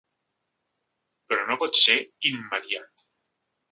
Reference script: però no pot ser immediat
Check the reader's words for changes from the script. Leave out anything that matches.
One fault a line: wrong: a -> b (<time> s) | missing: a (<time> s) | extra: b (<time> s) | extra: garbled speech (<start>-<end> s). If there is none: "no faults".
no faults